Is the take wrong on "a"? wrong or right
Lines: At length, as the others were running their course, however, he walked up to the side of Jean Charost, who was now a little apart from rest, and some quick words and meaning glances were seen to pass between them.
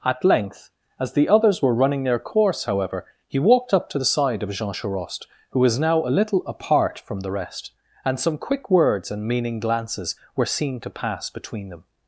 right